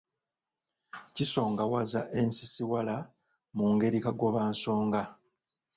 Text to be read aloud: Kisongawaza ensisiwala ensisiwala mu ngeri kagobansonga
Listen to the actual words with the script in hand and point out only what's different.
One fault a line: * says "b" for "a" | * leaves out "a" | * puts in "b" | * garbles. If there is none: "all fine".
* leaves out "ensisiwala"